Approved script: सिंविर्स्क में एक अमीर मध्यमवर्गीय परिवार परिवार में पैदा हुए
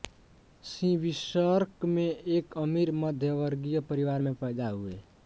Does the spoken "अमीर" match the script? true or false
true